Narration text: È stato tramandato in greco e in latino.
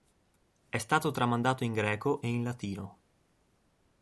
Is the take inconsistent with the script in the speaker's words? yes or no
no